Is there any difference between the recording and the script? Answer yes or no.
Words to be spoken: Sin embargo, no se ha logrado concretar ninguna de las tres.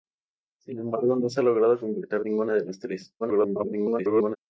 yes